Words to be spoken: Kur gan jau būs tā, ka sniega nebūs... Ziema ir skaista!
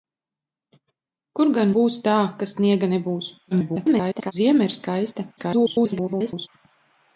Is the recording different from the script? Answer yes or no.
yes